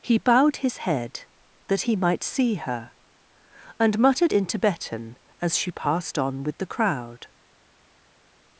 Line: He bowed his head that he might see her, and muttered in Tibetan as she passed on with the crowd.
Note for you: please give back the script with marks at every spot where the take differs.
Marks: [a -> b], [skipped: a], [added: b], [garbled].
He bowed his head that he might see her, and muttered in Tibetan as she passed on with the crowd.